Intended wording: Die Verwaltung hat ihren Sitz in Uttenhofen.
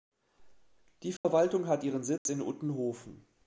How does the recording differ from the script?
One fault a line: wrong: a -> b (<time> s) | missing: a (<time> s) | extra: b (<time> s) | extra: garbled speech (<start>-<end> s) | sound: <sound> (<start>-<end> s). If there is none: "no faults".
sound: dropout (1.2-1.2 s)
sound: dropout (2.2-2.3 s)